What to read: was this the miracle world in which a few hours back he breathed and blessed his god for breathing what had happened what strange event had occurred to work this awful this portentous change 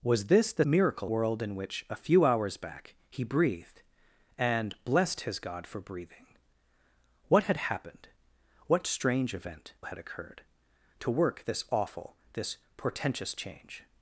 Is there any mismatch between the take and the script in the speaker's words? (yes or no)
no